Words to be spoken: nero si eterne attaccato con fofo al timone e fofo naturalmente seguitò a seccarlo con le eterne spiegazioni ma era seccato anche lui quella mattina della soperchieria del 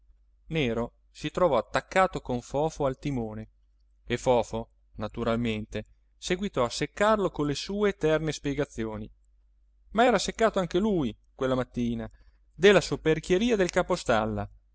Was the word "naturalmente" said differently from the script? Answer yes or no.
no